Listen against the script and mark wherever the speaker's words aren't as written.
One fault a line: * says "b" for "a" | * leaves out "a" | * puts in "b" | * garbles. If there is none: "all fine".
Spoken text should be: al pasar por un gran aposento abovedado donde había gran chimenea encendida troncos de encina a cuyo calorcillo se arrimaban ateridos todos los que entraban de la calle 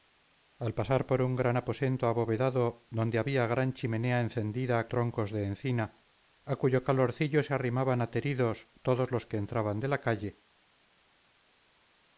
all fine